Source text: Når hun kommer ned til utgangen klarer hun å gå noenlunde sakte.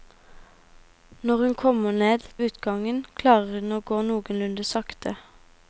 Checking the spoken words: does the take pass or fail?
fail